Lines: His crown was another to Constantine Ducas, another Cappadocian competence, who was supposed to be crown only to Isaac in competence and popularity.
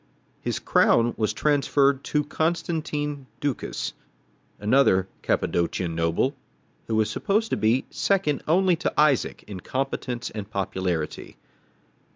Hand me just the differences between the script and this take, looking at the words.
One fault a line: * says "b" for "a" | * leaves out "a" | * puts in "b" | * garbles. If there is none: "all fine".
* says "transferred" for "another"
* says "noble" for "competence"
* says "second" for "crown"